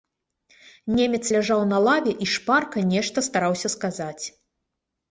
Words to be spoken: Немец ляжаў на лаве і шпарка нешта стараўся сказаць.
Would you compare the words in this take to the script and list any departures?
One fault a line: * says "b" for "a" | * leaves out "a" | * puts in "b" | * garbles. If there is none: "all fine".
all fine